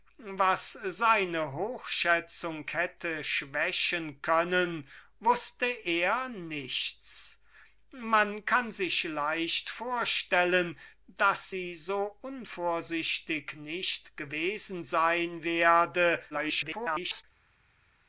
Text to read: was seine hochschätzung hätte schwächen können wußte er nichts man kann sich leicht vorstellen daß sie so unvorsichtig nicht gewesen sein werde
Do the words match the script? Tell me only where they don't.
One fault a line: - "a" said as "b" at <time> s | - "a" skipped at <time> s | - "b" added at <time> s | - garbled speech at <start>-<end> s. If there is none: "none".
- garbled speech at 16.3-17.2 s